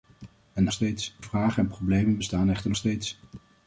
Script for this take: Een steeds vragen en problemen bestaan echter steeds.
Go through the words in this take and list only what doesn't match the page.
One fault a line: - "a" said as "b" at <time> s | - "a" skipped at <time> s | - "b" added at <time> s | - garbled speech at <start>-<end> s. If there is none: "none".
none